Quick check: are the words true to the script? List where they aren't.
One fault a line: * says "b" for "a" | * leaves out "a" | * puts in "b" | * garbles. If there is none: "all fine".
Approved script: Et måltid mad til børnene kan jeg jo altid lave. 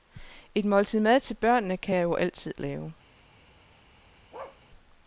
all fine